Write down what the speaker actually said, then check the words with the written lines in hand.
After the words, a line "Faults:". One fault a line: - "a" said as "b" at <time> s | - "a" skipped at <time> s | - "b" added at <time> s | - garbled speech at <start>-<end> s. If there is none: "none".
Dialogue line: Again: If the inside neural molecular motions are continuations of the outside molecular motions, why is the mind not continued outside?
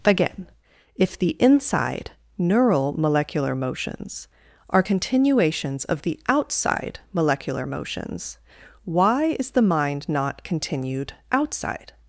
Again: If the inside neural molecular motions are continuations of the outside molecular motions, why is the mind not continued outside?
Faults:
none